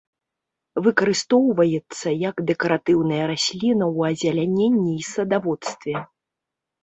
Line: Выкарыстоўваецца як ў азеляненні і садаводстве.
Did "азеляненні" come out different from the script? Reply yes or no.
no